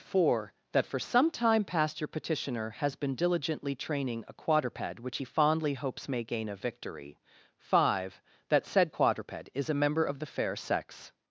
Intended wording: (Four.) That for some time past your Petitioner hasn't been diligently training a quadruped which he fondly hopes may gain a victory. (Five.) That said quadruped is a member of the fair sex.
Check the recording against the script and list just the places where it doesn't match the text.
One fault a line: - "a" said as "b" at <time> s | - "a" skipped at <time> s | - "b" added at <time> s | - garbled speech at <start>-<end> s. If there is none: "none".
- "hasn't" said as "has" at 2.7 s